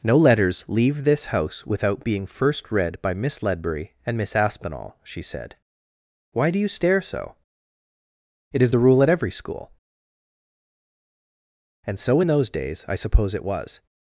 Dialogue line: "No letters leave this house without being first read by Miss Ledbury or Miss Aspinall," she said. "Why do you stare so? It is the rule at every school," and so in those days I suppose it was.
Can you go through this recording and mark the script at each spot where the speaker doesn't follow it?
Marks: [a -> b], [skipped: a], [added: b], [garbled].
"No letters leave this house without being first read by Miss Ledbury [or -> and] Miss Aspinall," she said. "Why do you stare so? It is the rule at every school," and so in those days I suppose it was.